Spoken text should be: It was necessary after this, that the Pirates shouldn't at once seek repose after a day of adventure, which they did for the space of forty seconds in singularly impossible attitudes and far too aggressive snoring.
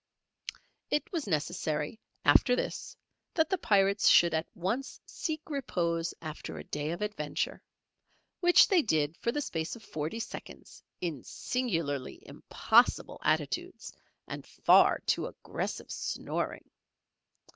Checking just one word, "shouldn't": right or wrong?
wrong